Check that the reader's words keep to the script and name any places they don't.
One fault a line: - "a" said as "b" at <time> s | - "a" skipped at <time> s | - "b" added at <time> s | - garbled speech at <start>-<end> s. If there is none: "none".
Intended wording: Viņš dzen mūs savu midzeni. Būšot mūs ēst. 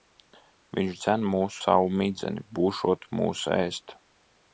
none